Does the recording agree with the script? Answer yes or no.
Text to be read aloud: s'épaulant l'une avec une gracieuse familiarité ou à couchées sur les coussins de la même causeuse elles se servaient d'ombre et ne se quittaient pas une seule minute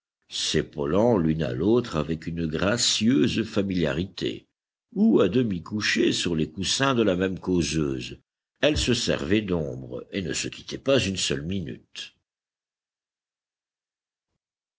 no